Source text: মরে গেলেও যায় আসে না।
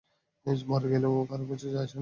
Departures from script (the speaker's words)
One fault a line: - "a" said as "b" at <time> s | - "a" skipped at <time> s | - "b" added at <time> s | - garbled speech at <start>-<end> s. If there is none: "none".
- "কারো কিছু" added at 1.3 s